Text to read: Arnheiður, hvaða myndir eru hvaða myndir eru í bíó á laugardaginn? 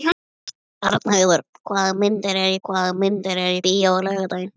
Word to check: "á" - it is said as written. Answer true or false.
true